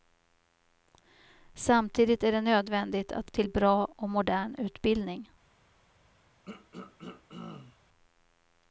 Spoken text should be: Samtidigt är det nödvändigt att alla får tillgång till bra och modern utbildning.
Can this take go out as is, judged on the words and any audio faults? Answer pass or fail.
fail